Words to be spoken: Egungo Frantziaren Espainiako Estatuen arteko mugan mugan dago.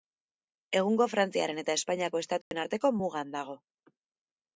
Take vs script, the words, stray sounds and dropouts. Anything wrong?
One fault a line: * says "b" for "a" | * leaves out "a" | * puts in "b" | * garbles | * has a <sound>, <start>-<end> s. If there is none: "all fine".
* puts in "eta"
* has a dropout, 2.4-2.5 s
* leaves out "mugan"